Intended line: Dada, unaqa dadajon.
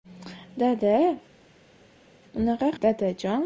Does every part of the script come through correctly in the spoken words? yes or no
yes